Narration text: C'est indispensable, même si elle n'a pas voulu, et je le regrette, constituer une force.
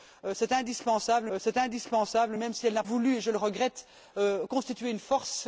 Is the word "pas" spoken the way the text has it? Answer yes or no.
no